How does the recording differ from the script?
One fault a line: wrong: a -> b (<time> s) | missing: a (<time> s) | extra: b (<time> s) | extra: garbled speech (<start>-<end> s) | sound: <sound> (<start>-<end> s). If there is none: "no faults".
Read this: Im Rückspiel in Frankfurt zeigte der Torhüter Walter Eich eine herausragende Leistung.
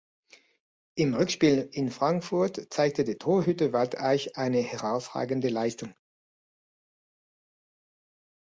no faults